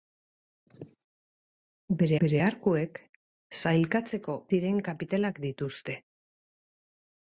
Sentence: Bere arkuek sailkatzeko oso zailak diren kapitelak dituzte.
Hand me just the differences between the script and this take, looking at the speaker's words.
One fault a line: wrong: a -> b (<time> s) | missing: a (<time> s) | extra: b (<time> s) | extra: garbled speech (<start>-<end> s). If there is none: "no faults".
extra: bere (2.2 s)
missing: oso zailak (4.4 s)